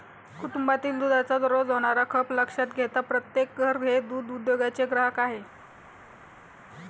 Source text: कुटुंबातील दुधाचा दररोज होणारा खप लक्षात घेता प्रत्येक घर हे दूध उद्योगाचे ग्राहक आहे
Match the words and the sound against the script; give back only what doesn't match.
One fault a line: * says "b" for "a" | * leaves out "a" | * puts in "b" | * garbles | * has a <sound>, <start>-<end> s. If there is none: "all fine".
all fine